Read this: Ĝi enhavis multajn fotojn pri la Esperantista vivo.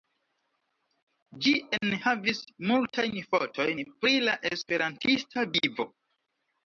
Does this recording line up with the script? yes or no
yes